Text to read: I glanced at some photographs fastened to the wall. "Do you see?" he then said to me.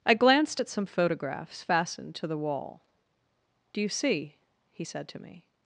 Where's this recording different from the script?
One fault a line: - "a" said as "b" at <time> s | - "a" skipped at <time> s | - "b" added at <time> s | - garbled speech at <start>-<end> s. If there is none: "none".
- "then" skipped at 4.8 s